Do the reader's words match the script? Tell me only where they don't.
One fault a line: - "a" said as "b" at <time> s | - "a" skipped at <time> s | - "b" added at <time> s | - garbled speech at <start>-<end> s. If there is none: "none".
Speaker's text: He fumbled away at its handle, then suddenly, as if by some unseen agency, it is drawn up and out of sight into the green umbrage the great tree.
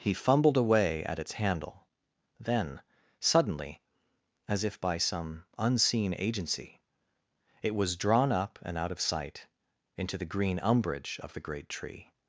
- "is" said as "was" at 7.8 s
- "of" added at 11.2 s